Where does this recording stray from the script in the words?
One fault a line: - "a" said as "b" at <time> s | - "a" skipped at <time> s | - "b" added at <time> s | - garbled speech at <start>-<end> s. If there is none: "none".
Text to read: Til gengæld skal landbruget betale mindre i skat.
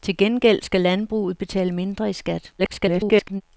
- garbled speech at 2.6-3.4 s